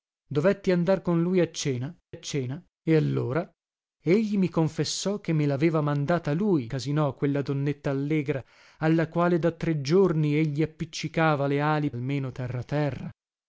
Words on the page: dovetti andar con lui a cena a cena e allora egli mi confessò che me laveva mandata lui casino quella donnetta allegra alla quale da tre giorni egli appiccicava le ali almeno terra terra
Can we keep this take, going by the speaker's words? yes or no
yes